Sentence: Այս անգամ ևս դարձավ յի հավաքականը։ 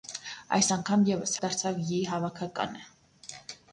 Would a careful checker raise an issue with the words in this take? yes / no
no